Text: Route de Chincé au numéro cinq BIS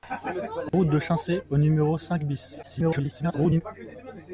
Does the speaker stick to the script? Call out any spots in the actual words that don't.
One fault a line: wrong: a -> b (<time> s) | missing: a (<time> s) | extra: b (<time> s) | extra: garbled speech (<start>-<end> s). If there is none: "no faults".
extra: garbled speech (2.6-3.6 s)